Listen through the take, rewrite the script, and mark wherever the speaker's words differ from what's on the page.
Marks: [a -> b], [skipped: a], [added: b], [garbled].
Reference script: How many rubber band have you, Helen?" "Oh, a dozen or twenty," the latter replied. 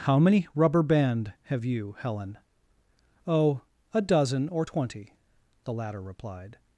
How many rubber band have you, Helen?" "Oh, a dozen or twenty," the latter replied.